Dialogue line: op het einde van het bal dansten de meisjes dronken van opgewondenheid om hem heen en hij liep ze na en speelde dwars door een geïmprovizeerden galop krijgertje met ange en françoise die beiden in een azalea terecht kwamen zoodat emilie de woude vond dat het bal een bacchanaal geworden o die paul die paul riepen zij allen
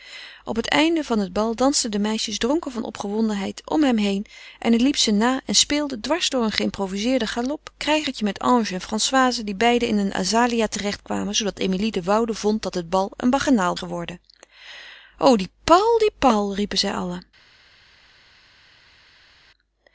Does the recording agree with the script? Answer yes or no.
yes